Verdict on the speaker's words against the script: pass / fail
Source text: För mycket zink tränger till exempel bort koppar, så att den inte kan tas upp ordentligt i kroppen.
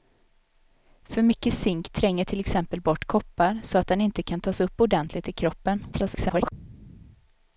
fail